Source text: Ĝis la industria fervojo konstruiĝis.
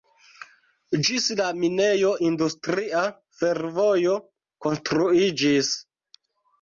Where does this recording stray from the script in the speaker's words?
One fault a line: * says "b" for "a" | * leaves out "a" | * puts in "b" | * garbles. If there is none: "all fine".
* puts in "minejo"